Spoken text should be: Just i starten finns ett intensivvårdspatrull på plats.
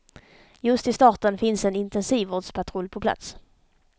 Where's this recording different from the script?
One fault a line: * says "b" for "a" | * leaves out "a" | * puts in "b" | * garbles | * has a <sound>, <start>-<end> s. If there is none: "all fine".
* says "en" for "ett"